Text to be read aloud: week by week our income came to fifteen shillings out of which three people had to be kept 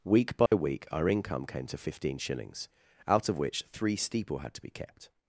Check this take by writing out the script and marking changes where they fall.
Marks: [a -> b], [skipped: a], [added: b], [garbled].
week by week our income came to fifteen shillings out of which three [people -> steeple] had to be kept